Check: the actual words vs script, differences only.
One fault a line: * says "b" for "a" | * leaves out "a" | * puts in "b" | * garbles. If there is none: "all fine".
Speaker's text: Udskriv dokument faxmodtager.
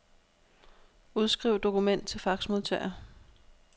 * puts in "til"